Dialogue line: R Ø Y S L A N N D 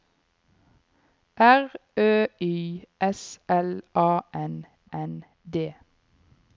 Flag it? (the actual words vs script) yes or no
no